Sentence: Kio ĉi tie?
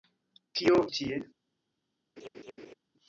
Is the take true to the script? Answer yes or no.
yes